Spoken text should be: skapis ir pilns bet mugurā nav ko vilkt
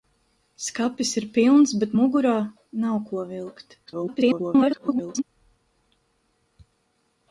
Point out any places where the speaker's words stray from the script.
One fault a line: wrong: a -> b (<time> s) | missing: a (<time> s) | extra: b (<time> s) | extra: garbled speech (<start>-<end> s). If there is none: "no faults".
extra: garbled speech (3.9-5.2 s)